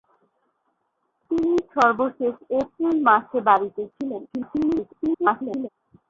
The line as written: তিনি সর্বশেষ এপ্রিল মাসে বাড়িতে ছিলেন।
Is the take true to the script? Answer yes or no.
no